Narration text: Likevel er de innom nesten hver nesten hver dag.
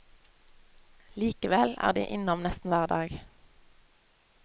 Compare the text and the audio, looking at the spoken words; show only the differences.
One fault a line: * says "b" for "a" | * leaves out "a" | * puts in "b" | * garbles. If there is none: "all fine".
* leaves out "nesten hver"